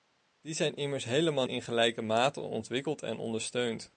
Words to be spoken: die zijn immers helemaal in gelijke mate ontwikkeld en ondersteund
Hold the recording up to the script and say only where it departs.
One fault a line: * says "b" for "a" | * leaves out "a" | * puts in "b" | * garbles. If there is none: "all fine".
all fine